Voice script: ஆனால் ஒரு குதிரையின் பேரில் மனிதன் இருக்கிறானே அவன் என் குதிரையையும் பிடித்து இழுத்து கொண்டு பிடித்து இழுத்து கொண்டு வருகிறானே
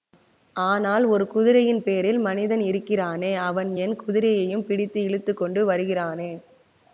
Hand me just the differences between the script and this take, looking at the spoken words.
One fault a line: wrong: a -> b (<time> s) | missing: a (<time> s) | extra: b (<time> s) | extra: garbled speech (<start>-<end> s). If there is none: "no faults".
missing: பிடித்து இழுத்து கொண்டு (5.6 s)